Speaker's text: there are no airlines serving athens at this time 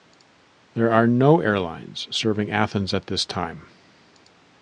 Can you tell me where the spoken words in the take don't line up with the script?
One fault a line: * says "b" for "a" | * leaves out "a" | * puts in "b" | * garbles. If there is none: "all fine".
all fine